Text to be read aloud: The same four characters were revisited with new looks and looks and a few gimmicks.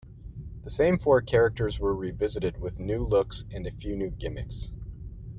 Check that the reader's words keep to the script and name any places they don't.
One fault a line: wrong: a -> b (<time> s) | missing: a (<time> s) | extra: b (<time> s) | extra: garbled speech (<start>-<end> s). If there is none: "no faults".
missing: looks and (3.7 s)
extra: new (4.0 s)